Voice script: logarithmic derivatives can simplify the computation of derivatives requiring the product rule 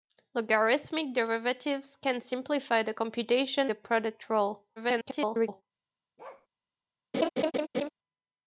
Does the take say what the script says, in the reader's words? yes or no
no